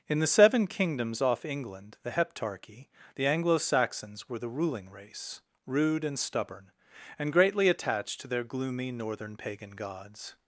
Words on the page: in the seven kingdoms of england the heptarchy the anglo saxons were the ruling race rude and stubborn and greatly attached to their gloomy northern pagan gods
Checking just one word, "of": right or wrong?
wrong